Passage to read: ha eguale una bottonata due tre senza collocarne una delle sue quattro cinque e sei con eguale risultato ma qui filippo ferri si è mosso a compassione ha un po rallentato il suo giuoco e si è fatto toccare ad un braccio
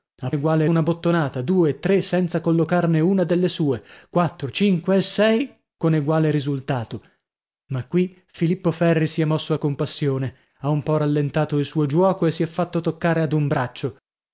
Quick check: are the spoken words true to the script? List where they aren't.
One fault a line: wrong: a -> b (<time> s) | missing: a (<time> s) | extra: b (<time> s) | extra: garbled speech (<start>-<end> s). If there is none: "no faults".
no faults